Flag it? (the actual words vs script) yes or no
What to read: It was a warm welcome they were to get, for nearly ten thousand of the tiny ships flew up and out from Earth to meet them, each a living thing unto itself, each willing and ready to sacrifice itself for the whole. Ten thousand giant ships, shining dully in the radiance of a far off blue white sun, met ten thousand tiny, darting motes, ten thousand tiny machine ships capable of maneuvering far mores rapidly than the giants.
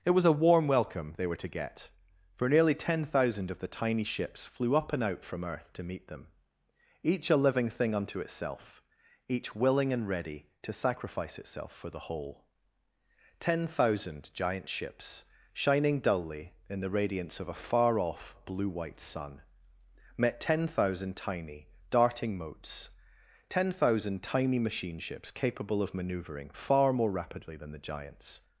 yes